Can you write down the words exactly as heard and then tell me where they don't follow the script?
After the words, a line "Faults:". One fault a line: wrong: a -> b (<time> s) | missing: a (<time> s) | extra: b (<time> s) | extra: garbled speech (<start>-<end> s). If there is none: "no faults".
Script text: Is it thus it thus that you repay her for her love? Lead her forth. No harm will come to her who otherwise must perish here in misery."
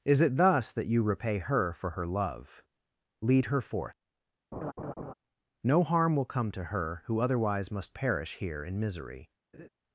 Is it thus that you repay her for her love? Lead her forth. No harm will come to her who otherwise must perish here in misery."
Faults:
missing: it thus (0.7 s)